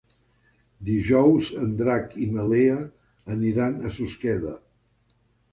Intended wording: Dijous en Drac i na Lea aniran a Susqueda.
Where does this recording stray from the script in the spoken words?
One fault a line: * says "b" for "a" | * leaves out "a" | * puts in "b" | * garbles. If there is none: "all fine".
all fine